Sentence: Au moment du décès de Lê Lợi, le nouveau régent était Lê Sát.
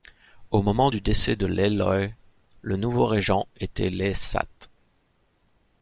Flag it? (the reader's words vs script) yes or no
no